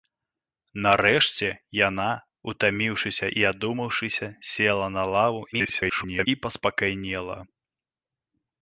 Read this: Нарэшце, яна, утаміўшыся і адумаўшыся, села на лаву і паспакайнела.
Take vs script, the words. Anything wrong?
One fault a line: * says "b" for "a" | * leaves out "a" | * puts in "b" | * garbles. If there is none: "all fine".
* garbles